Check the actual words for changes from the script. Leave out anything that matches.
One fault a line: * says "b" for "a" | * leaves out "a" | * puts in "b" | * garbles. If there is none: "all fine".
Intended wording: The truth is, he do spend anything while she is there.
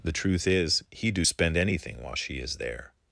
all fine